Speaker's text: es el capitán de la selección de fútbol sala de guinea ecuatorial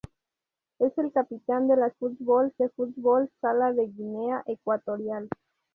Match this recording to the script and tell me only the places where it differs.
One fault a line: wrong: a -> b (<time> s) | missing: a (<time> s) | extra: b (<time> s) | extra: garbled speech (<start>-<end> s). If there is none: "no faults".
wrong: selección -> fútbol (1.9 s)